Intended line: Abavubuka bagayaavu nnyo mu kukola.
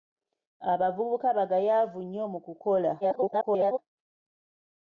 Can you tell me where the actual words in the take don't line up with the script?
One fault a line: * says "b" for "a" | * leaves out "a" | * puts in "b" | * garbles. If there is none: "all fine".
* garbles